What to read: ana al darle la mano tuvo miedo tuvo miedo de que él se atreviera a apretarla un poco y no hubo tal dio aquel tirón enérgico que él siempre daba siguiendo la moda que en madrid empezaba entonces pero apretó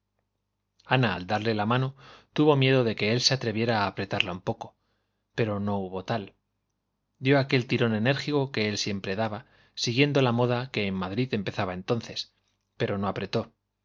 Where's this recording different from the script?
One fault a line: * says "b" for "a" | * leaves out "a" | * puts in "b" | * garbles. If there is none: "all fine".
* leaves out "tuvo miedo"
* says "pero" for "y"
* puts in "no"